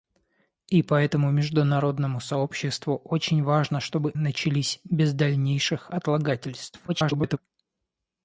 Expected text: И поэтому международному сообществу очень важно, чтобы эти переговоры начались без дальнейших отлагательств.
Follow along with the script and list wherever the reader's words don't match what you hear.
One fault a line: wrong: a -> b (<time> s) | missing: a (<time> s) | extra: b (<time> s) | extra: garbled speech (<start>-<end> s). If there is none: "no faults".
missing: эти переговоры (4.2 s)
extra: garbled speech (6.9-7.4 s)